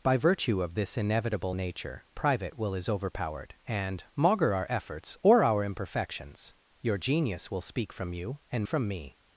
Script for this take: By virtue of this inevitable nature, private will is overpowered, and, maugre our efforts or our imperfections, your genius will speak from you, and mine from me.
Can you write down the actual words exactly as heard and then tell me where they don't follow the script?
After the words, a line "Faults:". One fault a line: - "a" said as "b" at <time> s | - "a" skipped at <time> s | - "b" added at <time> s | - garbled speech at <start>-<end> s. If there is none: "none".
By virtue of this inevitable nature, private will is overpowered, and, maugre our efforts or our imperfections, your genius will speak from you, and from me.
Faults:
- "mine" skipped at 8.6 s